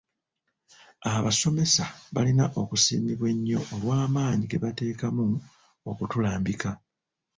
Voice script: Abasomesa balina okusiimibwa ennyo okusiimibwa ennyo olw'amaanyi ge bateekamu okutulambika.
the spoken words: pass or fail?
fail